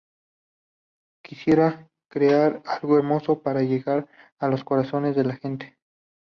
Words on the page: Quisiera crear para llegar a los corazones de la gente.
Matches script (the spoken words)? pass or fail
fail